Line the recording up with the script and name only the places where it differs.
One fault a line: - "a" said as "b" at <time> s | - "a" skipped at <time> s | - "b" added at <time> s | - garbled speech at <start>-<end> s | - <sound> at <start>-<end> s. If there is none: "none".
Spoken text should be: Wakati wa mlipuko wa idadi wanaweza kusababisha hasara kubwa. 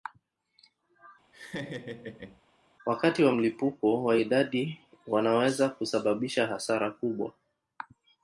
- laugh at 1.3-2.4 s